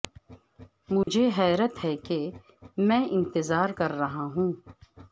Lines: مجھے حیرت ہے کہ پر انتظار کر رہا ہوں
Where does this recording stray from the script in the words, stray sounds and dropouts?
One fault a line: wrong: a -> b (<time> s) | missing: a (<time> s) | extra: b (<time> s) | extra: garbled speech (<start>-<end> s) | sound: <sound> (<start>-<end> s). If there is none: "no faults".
sound: dropout (1.0-1.1 s)
wrong: پر -> میں (2.8 s)